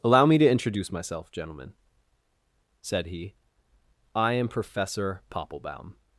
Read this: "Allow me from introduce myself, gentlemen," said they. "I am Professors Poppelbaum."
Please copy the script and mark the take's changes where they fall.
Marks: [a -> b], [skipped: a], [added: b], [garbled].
"Allow me [from -> to] introduce myself, gentlemen," said [they. -> he] "I am [Professors -> Professor] Poppelbaum."